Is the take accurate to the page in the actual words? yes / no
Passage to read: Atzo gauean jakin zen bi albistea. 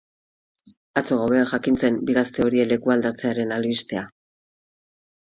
no